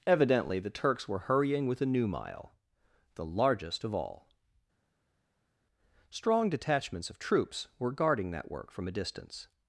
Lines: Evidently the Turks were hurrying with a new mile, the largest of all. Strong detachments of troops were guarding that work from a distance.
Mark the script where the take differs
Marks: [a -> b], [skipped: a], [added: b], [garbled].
Evidently the Turks were hurrying with a new mile, the largest of all. Strong detachments of troops were guarding that work from a distance.